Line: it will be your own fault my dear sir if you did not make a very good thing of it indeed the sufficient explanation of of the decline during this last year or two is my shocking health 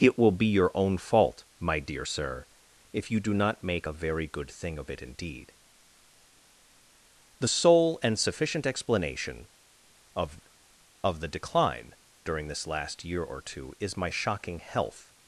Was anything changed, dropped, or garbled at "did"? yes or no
yes